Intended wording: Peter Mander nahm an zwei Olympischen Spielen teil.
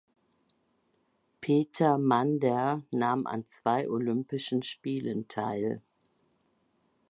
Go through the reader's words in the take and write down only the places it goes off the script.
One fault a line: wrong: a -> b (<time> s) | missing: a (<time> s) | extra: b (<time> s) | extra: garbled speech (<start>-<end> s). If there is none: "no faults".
no faults